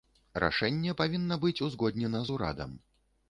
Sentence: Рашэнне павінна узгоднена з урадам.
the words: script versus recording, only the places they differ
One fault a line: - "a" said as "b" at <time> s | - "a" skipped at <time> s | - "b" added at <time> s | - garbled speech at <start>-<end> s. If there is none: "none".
- "быць" added at 1.5 s